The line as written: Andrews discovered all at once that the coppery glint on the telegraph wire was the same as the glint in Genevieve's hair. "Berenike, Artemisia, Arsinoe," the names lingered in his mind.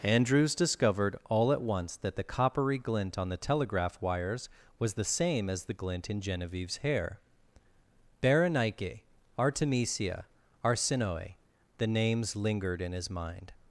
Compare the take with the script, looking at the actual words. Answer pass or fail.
fail